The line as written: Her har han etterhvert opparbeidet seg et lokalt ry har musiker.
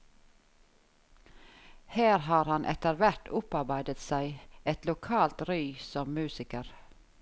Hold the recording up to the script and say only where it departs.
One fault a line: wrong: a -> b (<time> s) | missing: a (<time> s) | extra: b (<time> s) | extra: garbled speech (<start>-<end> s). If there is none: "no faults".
wrong: har -> som (5.9 s)